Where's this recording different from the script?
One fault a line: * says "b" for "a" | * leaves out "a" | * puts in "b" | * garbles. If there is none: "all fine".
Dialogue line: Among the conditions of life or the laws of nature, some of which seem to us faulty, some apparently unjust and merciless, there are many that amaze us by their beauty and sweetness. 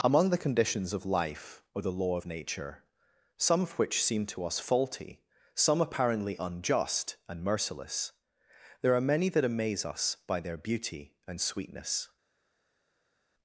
* says "law" for "laws"